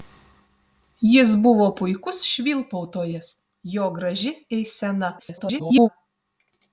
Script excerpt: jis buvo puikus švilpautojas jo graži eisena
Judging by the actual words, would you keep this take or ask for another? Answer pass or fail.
fail